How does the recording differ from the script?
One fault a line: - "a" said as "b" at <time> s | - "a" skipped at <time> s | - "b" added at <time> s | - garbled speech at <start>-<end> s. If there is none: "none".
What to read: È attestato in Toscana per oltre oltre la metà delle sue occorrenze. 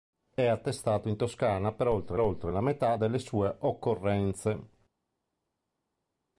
none